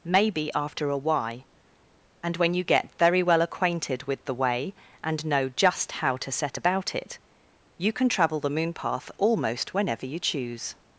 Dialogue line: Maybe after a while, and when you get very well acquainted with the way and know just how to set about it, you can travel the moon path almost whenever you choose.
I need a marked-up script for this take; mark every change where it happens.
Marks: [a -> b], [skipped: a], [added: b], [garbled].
Maybe after a [while, -> why] and when you get very well acquainted with the way and know just how to set about it, you can travel the moon path almost whenever you choose.